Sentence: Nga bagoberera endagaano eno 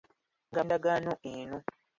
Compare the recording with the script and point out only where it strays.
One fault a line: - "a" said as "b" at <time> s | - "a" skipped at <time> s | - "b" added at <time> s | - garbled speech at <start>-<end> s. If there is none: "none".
- "bagoberera" skipped at 0.7 s